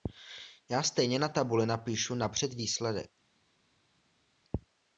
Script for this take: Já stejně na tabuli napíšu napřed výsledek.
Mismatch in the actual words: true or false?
false